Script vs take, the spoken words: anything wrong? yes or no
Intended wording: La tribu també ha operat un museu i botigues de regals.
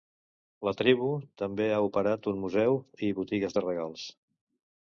no